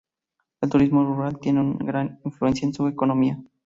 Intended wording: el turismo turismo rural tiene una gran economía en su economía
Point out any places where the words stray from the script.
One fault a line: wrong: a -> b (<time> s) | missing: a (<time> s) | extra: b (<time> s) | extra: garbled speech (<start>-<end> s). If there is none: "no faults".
missing: turismo (1.0 s)
wrong: economía -> influencia (2.2 s)